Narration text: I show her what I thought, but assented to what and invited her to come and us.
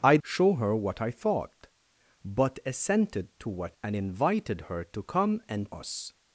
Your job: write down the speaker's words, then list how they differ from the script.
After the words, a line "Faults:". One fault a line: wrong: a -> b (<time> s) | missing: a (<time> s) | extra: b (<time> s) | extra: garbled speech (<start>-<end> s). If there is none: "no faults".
I show her what I thought, but assented to what and invited her to come and us.
Faults:
no faults